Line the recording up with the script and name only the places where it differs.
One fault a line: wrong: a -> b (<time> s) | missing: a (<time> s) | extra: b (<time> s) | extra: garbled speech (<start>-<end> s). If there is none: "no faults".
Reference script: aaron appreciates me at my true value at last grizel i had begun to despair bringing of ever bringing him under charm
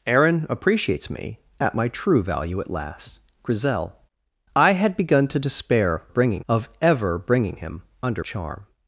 no faults